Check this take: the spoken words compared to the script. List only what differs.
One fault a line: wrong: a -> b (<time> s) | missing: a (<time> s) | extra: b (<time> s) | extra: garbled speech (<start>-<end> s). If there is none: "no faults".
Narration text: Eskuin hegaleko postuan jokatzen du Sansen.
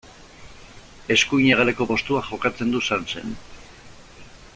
no faults